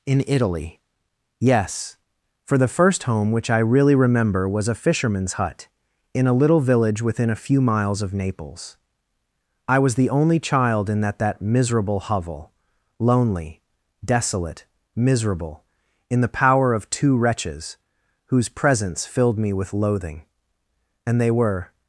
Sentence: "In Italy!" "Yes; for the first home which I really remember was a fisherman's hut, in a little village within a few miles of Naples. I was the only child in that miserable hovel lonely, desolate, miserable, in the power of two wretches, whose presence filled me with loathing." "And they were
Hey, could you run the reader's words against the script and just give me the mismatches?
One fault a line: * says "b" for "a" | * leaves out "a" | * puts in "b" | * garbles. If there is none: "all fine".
* puts in "that"